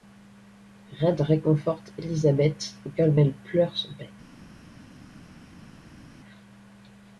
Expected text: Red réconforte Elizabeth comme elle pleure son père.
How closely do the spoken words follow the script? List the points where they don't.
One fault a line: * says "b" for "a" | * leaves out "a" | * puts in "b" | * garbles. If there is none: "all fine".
all fine